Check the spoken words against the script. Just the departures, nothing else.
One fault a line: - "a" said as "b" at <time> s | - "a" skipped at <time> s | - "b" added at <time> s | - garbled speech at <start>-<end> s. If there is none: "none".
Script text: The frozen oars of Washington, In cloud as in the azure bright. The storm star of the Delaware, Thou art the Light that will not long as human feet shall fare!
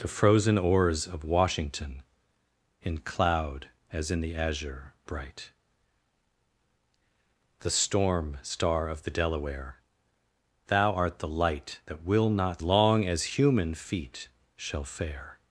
none